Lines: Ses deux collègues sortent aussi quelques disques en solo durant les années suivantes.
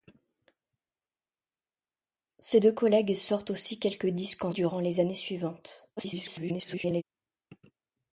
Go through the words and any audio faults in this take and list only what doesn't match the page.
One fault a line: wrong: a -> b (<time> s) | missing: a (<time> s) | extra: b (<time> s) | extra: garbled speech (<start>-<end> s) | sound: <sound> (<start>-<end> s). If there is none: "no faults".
missing: solo (4.5 s)
extra: garbled speech (6.0-7.0 s)